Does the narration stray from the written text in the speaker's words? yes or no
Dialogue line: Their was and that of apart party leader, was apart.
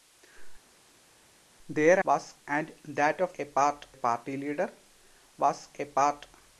no